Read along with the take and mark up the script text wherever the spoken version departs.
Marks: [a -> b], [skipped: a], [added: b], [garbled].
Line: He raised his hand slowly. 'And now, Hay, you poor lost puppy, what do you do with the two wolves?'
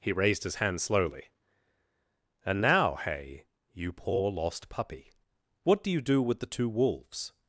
He raised his hand slowly. 'And now, Hay, you poor lost puppy, what do you do with the two wolves?'